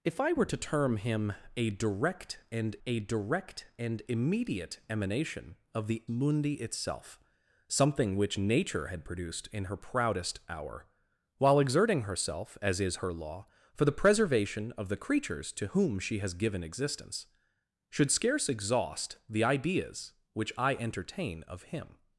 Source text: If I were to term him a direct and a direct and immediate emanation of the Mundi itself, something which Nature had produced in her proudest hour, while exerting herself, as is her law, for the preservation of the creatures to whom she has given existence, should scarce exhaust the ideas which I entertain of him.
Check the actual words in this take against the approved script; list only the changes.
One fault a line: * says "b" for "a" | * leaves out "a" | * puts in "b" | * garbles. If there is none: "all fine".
all fine